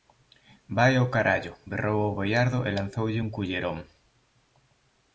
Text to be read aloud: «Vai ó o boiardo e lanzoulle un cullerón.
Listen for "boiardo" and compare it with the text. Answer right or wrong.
right